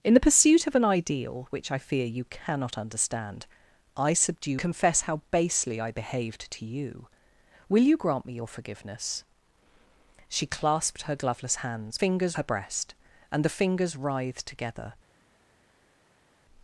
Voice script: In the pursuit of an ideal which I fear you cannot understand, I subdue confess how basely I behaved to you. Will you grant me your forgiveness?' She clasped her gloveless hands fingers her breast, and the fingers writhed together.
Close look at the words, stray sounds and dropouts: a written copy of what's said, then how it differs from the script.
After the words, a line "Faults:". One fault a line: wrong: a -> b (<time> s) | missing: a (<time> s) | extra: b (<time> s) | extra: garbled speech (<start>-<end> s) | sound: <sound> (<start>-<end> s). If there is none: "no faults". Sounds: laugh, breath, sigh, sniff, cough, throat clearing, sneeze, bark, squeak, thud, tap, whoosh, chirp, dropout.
In the pursuit of an ideal which I fear you cannot understand, I subdue confess how basely I behaved to you. Will you grant me your forgiveness?' She clasped her gloveless hands fingers her breast, and the fingers writhed together.
Faults:
no faults